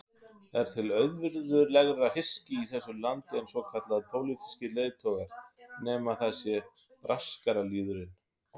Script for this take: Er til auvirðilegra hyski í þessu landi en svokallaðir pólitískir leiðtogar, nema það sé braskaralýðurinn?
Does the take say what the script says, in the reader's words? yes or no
yes